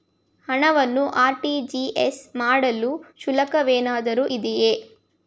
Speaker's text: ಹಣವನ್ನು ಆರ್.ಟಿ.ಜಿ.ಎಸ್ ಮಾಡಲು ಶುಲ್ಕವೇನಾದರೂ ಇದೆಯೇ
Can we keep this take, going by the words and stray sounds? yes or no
yes